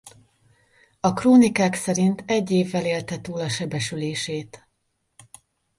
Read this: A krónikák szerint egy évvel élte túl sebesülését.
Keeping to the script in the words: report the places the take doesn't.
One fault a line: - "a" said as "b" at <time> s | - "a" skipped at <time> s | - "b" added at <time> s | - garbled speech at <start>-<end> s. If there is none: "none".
- "a" added at 3.4 s